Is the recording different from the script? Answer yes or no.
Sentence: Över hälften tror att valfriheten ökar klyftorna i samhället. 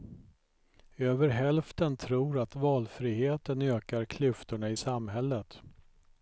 no